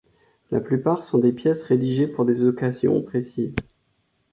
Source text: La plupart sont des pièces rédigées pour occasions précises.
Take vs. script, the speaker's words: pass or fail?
fail